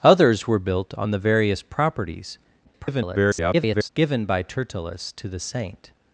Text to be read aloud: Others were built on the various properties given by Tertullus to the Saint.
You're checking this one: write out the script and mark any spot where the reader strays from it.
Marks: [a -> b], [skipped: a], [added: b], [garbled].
Others were built on the various properties [garbled] given by Tertullus to the Saint.